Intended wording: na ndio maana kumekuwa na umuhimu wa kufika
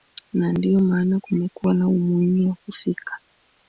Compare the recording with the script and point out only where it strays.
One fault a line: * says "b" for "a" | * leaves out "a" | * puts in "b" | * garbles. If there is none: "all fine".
all fine